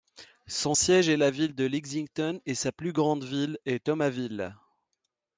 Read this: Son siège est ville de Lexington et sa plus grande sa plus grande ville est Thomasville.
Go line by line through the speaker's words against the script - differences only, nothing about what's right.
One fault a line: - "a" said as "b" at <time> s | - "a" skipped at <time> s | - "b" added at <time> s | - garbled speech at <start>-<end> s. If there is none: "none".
- "la" added at 1.2 s
- "sa plus grande" skipped at 3.2 s